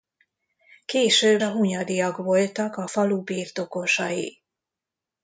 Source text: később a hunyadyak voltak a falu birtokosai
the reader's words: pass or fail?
pass